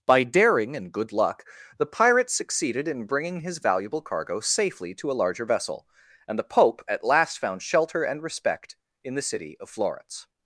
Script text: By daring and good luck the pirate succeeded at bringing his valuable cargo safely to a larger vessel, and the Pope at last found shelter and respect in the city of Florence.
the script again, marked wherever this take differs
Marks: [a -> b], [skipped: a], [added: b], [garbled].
By daring and good luck the pirate succeeded [at -> in] bringing his valuable cargo safely to a larger vessel, and the Pope at last found shelter and respect in the city of Florence.